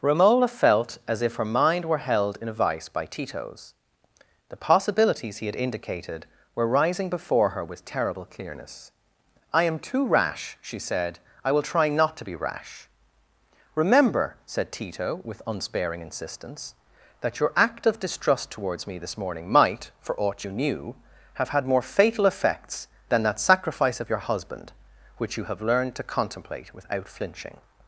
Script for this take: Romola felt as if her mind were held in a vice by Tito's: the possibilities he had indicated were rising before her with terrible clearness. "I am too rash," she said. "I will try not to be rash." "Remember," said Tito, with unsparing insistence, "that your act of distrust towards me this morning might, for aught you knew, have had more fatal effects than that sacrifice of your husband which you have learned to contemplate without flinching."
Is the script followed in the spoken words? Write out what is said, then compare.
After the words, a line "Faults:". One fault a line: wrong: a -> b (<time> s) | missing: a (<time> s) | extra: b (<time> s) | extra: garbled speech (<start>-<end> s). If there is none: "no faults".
Romola felt as if her mind were held in a vice by Tito's: the possibilities he had indicated were rising before her with terrible clearness. "I am too rash," she said. "I will try not to be rash." "Remember," said Tito, with unsparing insistence, "that your act of distrust towards me this morning might, for aught you knew, have had more fatal effects than that sacrifice of your husband which you have learned to contemplate without flinching."
Faults:
no faults